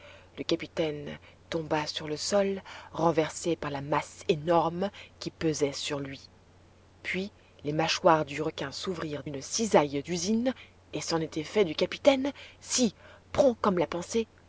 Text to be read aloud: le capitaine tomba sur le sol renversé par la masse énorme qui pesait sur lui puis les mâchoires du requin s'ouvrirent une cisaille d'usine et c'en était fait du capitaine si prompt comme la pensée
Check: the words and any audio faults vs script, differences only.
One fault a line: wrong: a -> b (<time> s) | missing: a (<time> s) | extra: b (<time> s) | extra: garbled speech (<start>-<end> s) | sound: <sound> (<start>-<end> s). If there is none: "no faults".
no faults